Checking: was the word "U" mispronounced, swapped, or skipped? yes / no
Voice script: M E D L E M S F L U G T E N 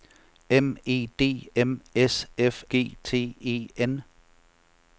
yes